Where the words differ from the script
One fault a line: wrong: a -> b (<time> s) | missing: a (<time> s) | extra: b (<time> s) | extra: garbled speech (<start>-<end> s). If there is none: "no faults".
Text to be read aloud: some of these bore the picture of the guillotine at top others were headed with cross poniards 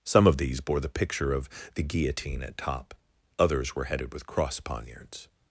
no faults